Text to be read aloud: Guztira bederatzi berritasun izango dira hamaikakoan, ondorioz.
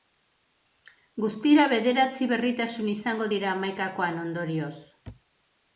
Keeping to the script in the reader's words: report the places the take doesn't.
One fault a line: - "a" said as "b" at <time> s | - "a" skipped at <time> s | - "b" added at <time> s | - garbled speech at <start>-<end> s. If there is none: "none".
none